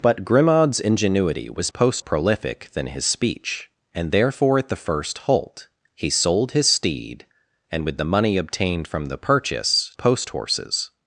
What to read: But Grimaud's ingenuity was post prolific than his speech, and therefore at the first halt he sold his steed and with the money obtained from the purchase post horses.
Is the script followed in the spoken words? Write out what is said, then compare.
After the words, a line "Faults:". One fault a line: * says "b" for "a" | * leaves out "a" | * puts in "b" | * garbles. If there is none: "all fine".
But Grimaud's ingenuity was post prolific than his speech, and therefore at the first halt he sold his steed and with the money obtained from the purchase post horses.
Faults:
all fine